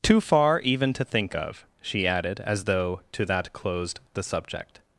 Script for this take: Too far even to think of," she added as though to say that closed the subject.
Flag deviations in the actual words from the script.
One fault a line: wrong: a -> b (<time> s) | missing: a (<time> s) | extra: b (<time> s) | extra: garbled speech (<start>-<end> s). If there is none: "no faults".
missing: say (3.3 s)